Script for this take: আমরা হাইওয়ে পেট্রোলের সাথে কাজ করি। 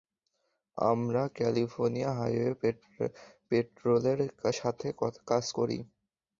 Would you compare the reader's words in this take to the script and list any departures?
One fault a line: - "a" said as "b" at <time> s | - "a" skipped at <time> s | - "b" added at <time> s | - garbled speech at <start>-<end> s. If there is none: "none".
- "ক্যালিফোর্নিয়া" added at 1.4 s